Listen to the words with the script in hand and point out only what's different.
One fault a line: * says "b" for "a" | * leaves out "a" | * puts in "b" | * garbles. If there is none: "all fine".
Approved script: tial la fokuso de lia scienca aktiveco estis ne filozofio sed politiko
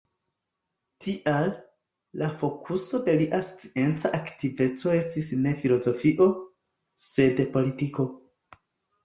all fine